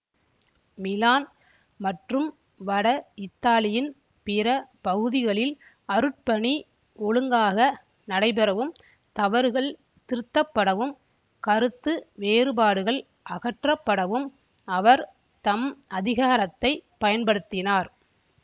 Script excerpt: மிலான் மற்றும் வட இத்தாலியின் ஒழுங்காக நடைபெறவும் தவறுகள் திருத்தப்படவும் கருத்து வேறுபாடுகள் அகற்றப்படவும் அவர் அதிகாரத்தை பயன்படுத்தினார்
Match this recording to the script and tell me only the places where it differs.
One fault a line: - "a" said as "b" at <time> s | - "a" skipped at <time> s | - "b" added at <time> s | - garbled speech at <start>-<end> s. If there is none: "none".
- "பிற பகுதிகளில் அருட்பணி" added at 4.3 s
- "தம்" added at 15.4 s